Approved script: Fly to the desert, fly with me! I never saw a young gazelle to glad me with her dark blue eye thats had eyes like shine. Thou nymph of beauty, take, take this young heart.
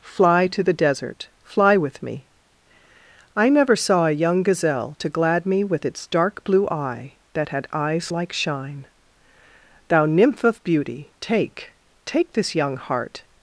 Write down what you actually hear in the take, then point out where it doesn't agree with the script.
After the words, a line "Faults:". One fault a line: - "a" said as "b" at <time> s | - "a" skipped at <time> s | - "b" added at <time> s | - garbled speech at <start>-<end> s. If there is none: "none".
Fly to the desert, fly with me! I never saw a young gazelle to glad me with its dark blue eye that had eyes like shine. Thou nymph of beauty, take, take this young heart.
Faults:
- "her" said as "its" at 5.8 s
- "thats" said as "that" at 7.3 s